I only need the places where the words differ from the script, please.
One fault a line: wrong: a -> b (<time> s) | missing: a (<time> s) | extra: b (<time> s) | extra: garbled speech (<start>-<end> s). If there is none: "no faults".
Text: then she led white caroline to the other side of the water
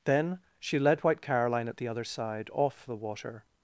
wrong: to -> at (1.7 s)
wrong: of -> off (2.5 s)